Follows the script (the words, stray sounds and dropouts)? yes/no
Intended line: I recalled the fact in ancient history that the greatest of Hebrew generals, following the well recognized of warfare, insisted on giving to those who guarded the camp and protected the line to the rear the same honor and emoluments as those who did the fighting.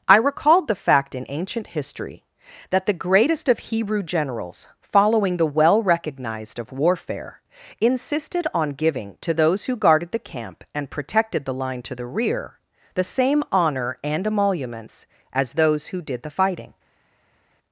yes